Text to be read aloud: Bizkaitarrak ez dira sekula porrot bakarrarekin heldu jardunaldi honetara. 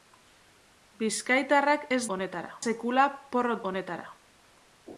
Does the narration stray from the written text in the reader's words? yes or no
yes